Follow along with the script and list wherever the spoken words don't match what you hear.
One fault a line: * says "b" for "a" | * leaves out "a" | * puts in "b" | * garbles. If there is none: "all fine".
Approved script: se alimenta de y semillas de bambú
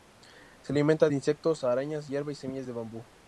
* puts in "insectos arañas hierba"